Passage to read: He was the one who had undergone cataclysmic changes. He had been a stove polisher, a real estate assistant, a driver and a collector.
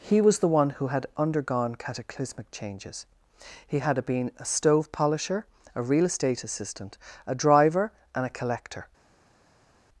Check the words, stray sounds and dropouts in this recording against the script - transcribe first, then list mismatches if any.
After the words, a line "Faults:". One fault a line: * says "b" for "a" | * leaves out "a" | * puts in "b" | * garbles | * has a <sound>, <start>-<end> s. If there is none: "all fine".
He was the one who had undergone cataclysmic changes. He had been a stove polisher, a real estate assistant, a driver and a collector.
Faults:
all fine